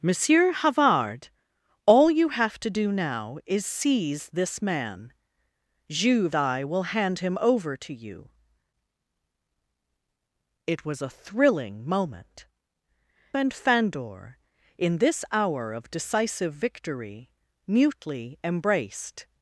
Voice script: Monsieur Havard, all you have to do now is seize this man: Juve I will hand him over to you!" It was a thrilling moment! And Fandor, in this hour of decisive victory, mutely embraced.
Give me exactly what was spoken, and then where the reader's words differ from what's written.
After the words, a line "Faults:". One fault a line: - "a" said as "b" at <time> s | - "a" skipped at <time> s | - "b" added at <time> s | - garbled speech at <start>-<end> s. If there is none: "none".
Monsieur Havard, all you have to do now is seize this man: Juve I will hand him over to you!" It was a thrilling moment! And Fandor, in this hour of decisive victory, mutely embraced.
Faults:
none